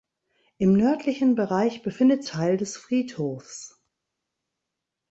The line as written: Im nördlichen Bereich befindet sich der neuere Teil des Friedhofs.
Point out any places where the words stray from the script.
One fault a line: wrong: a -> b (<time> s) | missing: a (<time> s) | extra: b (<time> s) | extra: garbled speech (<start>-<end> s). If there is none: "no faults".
missing: sich der neuere (2.2 s)